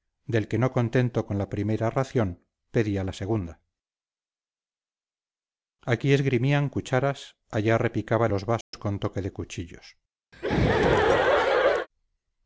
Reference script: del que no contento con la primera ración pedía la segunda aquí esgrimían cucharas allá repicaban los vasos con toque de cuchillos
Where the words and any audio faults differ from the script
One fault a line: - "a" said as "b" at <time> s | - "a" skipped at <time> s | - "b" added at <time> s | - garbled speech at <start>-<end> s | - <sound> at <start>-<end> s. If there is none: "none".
- dropout at 8.6-8.7 s
- laugh at 10.3-11.9 s